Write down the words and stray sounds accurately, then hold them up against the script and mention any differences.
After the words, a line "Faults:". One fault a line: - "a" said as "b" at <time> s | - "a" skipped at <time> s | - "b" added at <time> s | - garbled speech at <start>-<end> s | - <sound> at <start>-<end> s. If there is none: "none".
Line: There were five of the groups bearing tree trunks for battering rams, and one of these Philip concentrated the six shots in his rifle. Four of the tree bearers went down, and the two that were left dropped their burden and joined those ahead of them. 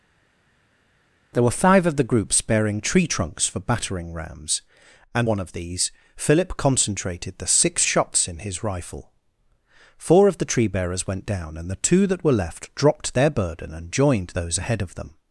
There were five of the groups bearing tree trunks for battering rams, and one of these Philip concentrated the six shots in his rifle. Four of the tree bearers went down, and the two that were left dropped their burden and joined those ahead of them.
Faults:
none